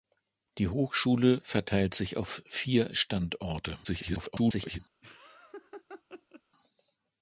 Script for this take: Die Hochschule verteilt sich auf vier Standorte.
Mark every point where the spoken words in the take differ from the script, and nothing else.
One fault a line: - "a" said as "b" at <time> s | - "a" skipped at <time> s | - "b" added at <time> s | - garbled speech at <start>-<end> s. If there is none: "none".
- garbled speech at 3.8-4.8 s